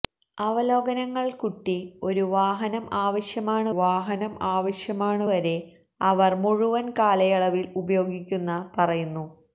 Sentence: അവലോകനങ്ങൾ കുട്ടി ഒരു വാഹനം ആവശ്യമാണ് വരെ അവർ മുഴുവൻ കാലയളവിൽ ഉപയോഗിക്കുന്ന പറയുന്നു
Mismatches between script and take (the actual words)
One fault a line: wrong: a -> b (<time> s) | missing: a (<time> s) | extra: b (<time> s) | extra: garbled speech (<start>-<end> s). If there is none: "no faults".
extra: വാഹനം ആവശ്യമാണ് (3.8 s)